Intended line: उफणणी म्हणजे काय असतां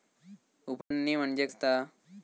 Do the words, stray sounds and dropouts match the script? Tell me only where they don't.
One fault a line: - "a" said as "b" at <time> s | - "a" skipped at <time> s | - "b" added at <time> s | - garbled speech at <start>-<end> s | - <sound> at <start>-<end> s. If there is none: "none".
- dropout at 0.8-0.9 s
- "काय" skipped at 1.4 s